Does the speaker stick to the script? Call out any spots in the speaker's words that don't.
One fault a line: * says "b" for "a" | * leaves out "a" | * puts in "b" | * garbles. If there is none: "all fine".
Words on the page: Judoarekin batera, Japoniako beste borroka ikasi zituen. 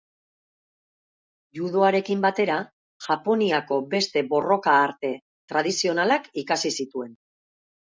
* puts in "arte tradizionalak"